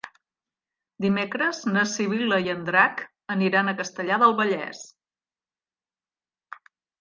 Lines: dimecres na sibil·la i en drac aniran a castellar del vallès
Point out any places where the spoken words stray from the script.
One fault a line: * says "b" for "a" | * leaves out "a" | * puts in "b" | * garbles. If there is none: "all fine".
all fine